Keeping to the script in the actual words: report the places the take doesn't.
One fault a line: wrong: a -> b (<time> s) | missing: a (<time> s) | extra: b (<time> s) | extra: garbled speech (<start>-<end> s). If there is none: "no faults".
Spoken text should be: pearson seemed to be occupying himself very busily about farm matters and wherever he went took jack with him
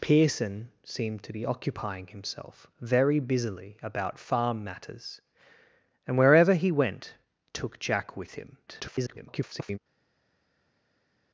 extra: garbled speech (8.7-9.8 s)